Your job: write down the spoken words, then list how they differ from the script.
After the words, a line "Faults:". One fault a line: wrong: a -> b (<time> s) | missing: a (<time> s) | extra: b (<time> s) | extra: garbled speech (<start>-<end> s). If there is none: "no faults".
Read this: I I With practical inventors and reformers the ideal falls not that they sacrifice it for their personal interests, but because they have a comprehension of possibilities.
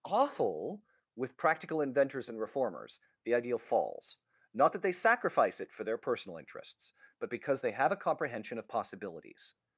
awful With practical inventors and reformers the ideal falls not that they sacrifice it for their personal interests, but because they have a comprehension of possibilities.
Faults:
wrong: I I -> awful (0.0 s)